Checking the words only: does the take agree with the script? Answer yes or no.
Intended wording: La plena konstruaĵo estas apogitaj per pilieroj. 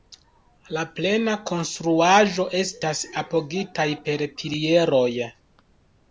yes